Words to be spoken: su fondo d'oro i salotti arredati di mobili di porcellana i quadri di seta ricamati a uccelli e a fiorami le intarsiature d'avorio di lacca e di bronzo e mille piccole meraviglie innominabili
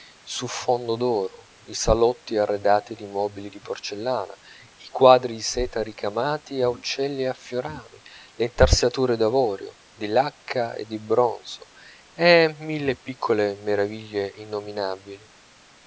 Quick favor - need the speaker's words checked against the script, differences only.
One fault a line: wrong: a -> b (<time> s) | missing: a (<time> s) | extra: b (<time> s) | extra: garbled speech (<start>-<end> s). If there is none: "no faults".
no faults